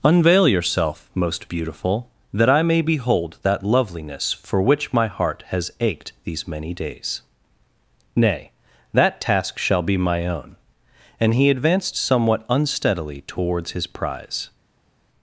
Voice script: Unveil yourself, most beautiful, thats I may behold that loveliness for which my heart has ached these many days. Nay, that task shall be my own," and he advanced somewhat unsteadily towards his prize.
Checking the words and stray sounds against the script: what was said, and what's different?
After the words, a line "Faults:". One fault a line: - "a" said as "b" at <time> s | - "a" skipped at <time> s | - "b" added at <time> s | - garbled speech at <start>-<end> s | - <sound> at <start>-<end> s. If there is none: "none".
Unveil yourself, most beautiful, that I may behold that loveliness for which my heart has ached these many days. Nay, that task shall be my own," and he advanced somewhat unsteadily towards his prize.
Faults:
- "thats" said as "that" at 2.3 s